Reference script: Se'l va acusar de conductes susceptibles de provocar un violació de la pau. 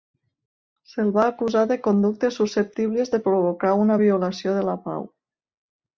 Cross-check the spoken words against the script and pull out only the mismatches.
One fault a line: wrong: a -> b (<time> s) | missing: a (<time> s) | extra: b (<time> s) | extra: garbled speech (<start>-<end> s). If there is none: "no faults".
wrong: un -> una (3.9 s)